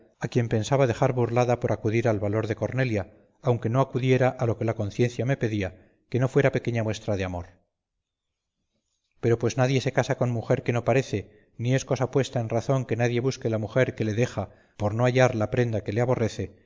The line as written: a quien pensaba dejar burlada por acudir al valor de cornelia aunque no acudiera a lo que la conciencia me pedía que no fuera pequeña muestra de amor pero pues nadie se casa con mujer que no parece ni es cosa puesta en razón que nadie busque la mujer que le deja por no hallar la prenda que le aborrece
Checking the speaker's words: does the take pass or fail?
pass